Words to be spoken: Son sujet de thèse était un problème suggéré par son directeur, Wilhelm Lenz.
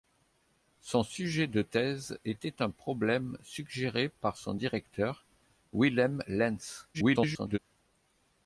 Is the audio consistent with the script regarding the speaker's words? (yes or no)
no